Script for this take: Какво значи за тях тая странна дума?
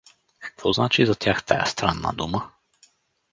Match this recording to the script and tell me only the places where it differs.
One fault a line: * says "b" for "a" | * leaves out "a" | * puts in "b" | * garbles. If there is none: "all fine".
all fine